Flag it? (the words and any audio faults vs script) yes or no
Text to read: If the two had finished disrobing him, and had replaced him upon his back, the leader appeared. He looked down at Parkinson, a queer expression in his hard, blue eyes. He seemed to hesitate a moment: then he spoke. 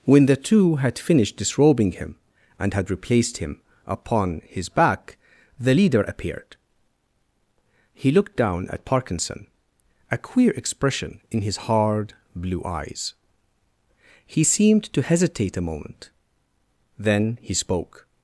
yes